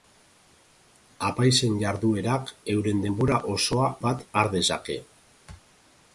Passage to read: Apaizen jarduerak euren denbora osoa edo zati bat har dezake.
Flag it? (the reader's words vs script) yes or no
yes